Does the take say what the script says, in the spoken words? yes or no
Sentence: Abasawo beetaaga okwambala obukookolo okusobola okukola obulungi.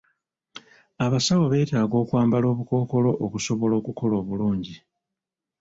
yes